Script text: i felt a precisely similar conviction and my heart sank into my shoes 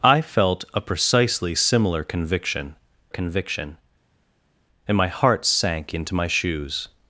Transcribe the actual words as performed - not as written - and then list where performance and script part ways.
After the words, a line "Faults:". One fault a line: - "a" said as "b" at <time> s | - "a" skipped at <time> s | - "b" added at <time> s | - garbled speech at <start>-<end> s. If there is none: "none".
i felt a precisely similar conviction conviction and my heart sank into my shoes
Faults:
- "conviction" added at 3.1 s